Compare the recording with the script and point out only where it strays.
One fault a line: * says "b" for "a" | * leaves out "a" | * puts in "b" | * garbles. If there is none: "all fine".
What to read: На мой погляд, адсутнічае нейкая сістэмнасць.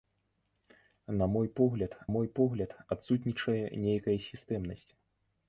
* puts in "мой погляд"